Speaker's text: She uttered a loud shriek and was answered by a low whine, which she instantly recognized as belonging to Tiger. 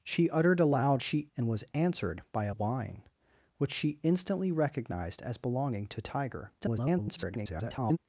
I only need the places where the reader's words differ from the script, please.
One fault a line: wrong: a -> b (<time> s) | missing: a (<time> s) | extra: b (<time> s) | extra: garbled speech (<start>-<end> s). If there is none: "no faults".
wrong: shriek -> she (1.0 s)
missing: low (2.5 s)
extra: garbled speech (6.6-8.0 s)